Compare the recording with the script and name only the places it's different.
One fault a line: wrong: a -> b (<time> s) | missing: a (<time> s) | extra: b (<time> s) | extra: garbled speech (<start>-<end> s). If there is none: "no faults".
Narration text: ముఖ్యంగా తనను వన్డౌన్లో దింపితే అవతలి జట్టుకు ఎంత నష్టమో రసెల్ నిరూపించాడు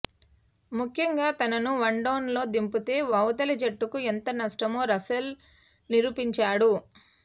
no faults